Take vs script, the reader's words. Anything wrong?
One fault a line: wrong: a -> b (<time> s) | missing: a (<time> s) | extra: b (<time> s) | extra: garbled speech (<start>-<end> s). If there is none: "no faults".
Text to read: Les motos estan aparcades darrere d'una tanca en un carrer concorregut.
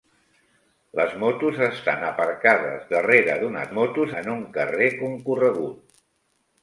wrong: tanca -> motos (3.8 s)